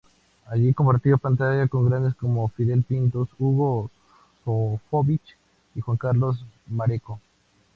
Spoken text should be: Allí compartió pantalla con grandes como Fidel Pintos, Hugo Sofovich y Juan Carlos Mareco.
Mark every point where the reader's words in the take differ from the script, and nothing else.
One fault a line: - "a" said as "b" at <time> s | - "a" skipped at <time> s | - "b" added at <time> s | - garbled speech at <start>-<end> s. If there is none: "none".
none